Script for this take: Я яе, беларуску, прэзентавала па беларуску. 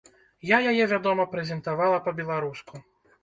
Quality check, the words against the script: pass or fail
fail